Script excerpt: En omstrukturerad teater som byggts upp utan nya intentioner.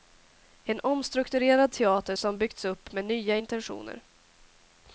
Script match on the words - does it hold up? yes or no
no